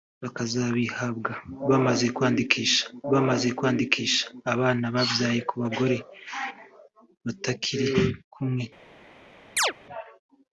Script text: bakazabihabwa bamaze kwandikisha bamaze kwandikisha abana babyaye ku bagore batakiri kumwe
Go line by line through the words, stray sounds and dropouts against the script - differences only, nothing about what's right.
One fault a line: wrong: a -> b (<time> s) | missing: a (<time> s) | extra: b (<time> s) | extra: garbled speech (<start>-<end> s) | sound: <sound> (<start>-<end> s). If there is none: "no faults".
sound: chirp (9.6-9.7 s)